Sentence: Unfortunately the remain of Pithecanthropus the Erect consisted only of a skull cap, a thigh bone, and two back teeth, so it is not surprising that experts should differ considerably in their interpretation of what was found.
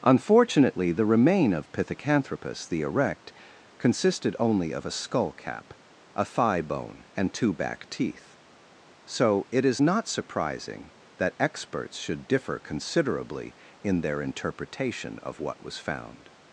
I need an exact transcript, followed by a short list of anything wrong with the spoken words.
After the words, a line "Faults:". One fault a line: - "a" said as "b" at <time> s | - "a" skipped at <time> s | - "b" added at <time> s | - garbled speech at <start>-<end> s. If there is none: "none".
Unfortunately the remain of Pithecanthropus the Erect consisted only of a skull cap, a thigh bone, and two back teeth, so it is not surprising that experts should differ considerably in their interpretation of what was found.
Faults:
none